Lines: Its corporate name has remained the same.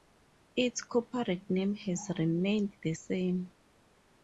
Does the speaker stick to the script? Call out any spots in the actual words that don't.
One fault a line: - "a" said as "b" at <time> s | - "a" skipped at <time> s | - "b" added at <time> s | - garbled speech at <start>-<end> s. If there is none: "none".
none